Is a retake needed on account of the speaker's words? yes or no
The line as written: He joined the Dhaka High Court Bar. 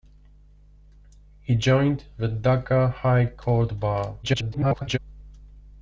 yes